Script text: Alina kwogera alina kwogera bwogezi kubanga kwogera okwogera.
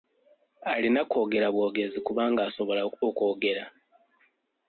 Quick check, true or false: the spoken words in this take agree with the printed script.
false